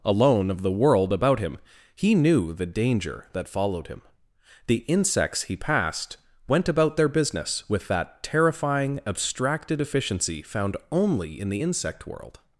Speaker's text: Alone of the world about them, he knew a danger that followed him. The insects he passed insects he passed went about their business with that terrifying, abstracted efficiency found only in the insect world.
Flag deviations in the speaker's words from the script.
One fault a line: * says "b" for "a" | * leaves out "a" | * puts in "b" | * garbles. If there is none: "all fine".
* says "him" for "them"
* says "the" for "a"
* leaves out "insects he passed"